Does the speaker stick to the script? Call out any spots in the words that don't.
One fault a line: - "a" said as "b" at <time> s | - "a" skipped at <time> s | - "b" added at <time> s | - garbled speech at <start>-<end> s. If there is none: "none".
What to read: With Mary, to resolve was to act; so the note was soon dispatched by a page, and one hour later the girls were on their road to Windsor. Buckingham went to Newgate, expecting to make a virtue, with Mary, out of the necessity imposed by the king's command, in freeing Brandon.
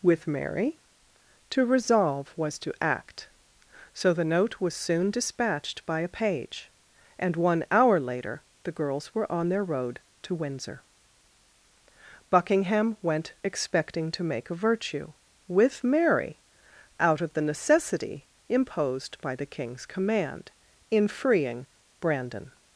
- "to Newgate" skipped at 13.3 s